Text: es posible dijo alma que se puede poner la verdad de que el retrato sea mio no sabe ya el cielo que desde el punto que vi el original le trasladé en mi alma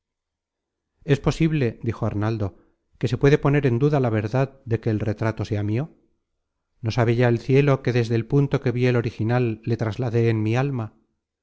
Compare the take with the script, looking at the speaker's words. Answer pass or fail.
fail